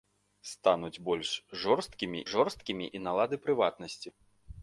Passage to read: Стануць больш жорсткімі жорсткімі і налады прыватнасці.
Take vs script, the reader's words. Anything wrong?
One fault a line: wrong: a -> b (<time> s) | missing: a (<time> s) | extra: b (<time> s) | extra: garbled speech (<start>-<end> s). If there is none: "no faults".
no faults